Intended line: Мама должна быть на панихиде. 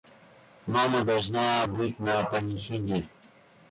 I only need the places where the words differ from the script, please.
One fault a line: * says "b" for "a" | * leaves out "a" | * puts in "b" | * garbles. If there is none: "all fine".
all fine